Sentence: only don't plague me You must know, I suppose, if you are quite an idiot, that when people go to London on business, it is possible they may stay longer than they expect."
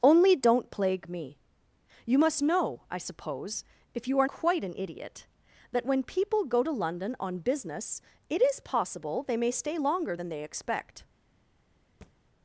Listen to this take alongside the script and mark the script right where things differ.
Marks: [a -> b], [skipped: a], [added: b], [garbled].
only don't plague me You must know, I suppose, if you are quite an idiot, that when people go to London on business, it is possible they may stay longer than they expect."